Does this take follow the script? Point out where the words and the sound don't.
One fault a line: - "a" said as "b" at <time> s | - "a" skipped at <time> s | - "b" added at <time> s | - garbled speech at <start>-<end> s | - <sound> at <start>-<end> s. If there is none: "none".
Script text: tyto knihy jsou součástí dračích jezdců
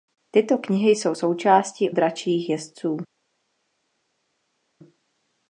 none